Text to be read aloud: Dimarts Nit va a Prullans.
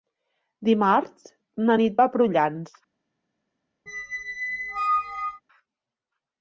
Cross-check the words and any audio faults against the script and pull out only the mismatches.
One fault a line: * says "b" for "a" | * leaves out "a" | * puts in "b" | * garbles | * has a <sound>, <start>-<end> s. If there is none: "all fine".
* puts in "na"
* has a squeak, 3.9-5.4 s